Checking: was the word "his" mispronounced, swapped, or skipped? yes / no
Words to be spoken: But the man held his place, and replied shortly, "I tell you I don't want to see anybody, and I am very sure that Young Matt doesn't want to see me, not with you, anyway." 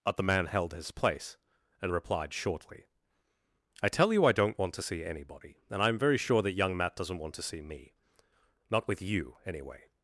no